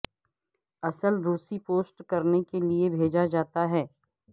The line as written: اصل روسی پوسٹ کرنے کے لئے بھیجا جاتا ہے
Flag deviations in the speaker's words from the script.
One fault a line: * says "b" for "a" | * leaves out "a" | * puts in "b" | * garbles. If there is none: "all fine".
all fine